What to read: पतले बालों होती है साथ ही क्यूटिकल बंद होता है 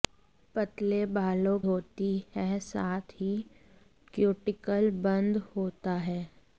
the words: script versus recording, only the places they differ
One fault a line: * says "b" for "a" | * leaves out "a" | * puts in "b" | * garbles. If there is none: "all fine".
all fine